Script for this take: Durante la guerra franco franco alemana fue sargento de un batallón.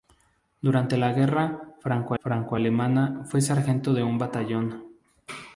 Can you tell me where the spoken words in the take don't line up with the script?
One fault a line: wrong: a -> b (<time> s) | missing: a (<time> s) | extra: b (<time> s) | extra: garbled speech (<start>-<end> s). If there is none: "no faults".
no faults